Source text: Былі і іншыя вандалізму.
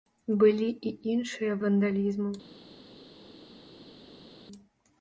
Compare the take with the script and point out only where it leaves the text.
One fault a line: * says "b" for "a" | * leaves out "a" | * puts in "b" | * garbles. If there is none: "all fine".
all fine